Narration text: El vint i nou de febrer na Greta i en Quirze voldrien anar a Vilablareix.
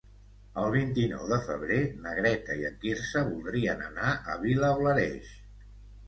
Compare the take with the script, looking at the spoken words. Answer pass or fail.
pass